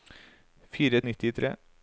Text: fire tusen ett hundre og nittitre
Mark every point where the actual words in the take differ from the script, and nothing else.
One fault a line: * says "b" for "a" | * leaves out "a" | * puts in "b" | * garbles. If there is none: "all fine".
* leaves out "tusen ett hundre"